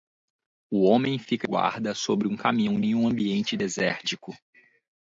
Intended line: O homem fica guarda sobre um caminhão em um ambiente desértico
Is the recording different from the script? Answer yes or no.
no